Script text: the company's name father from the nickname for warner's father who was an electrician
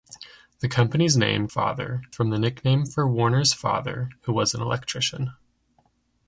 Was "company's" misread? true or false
false